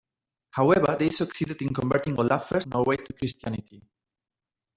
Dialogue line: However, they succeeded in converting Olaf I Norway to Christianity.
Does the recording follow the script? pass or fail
pass